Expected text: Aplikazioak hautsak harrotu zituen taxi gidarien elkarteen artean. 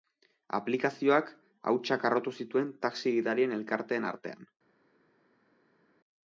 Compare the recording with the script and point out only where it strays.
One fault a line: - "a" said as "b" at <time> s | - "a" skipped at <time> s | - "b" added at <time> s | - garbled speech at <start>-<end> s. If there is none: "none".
none